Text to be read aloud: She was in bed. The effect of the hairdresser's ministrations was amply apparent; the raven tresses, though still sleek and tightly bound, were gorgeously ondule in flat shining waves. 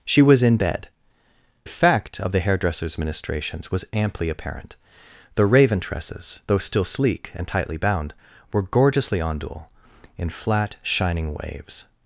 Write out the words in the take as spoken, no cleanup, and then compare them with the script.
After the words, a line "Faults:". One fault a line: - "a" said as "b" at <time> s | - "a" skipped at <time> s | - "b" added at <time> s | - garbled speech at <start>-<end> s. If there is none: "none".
She was in bed. Effect of the hairdresser's ministrations was amply apparent; the raven tresses, though still sleek and tightly bound, were gorgeously ondule in flat shining waves.
Faults:
- "The" skipped at 0.9 s